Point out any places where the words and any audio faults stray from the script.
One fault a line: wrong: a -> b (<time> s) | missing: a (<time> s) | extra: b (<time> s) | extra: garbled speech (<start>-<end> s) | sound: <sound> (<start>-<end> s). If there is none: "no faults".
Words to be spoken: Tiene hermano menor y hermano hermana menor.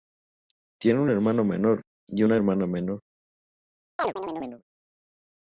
extra: un (1.0 s)
wrong: hermano -> una (2.2 s)
sound: chirp (4.0-4.6 s)